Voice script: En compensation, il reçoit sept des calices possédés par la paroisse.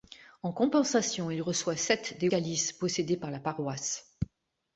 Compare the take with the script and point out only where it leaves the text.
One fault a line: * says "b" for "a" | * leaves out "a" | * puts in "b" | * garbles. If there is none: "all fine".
all fine